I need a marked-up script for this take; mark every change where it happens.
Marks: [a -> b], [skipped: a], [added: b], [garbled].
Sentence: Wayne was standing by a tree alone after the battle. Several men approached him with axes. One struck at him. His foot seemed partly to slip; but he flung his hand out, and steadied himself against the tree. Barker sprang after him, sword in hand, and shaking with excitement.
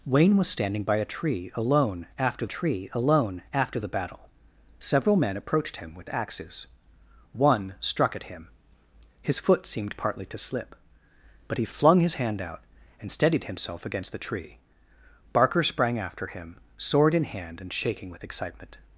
Wayne was standing by a tree alone after [added: tree alone after] the battle. Several men approached him with axes. One struck at him. His foot seemed partly to slip; but he flung his hand out, and steadied himself against the tree. Barker sprang after him, sword in hand, and shaking with excitement.